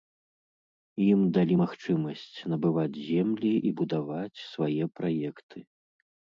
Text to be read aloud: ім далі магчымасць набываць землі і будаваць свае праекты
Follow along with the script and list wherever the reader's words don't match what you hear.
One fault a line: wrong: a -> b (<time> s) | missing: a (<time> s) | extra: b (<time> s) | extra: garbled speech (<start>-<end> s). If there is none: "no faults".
no faults